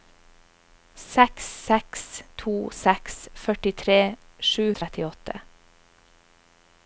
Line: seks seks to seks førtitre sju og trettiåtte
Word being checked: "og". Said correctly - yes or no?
yes